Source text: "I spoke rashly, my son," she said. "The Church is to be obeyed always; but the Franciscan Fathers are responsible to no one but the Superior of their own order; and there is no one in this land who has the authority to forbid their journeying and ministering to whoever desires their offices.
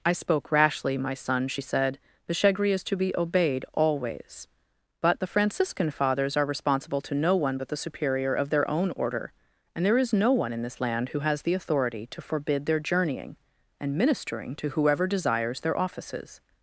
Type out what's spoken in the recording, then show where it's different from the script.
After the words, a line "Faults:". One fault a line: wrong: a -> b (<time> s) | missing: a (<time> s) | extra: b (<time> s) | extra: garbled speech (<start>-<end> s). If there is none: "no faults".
"I spoke rashly, my son," she said. "The Shegri is to be obeyed always; but the Franciscan Fathers are responsible to no one but the Superior of their own order; and there is no one in this land who has the authority to forbid their journeying and ministering to whoever desires their offices.
Faults:
wrong: Church -> Shegri (2.3 s)